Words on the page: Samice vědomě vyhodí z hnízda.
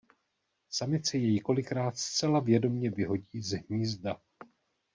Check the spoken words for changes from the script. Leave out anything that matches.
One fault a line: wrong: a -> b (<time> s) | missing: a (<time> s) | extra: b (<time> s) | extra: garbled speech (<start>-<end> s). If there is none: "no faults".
extra: jej kolikrát zcela (1.2 s)